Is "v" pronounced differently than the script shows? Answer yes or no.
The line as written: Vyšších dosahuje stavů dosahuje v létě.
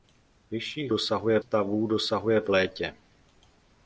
no